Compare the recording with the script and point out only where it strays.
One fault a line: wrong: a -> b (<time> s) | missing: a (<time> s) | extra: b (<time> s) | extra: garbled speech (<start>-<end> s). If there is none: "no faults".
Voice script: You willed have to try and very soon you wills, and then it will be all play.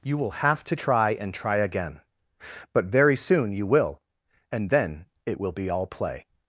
wrong: willed -> will (0.2 s)
extra: try again but (1.3 s)
wrong: wills -> will (3.7 s)